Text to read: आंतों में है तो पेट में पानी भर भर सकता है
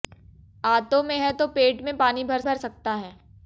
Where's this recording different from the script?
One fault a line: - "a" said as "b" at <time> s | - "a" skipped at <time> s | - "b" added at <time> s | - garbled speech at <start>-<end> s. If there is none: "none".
none